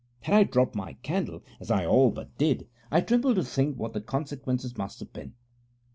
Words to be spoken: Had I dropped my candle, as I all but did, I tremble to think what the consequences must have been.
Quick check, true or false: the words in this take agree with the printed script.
true